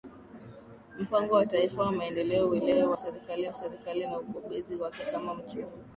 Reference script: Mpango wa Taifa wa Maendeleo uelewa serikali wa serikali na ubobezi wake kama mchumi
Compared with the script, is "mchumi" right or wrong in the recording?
right